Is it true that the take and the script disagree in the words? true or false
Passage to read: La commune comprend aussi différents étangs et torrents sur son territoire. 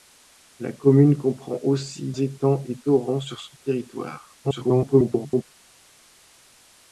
true